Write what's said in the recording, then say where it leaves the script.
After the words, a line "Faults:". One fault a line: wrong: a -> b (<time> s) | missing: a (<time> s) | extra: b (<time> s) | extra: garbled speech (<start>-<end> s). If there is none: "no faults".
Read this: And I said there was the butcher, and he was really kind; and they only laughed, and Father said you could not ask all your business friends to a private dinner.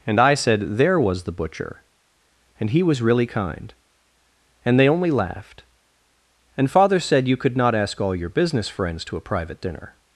And I said there was the butcher, and he was really kind; and they only laughed, and Father said you could not ask all your business friends to a private dinner.
Faults:
no faults